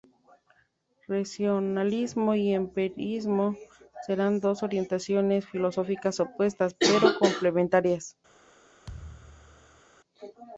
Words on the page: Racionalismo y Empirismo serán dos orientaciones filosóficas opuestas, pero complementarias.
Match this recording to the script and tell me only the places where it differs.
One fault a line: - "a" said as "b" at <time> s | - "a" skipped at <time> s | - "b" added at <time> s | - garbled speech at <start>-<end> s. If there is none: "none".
none